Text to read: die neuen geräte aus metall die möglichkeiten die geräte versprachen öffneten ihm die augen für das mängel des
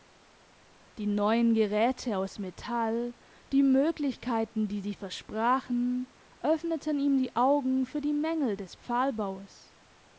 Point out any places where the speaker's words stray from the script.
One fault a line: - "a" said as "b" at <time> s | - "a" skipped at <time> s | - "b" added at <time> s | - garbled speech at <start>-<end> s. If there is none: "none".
- "geräte" said as "sie" at 4.8 s
- "das" said as "die" at 8.0 s